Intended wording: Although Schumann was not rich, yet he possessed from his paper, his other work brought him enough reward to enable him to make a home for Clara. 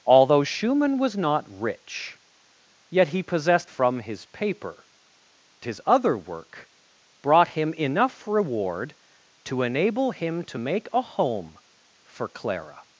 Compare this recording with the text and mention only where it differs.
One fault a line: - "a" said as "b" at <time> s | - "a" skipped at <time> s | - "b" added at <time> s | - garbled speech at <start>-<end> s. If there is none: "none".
none